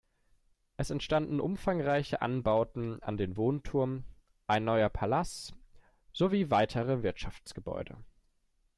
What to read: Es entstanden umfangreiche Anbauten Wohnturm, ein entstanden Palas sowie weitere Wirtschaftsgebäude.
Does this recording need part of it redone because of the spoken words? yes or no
yes